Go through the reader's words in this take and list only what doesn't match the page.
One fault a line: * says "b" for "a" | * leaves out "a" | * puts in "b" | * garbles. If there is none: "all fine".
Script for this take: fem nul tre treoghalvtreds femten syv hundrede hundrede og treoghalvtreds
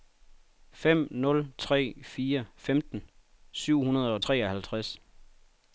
* says "fire" for "treoghalvtreds"
* leaves out "hundrede"